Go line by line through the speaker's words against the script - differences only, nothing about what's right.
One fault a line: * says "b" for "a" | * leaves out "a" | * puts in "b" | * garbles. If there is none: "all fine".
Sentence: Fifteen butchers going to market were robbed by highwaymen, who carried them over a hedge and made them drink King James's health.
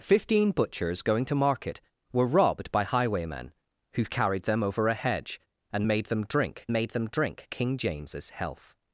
* puts in "made them drink"